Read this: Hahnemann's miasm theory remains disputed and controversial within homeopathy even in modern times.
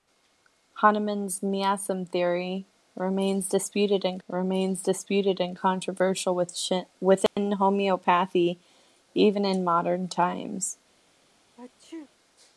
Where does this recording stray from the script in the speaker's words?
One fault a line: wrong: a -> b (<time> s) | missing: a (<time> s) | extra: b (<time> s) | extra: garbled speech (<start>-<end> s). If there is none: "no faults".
extra: remains disputed and (4.3 s)